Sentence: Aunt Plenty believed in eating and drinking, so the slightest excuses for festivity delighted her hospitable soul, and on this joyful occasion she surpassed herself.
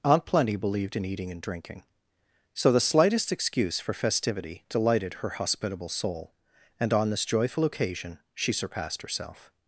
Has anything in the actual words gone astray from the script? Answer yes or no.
yes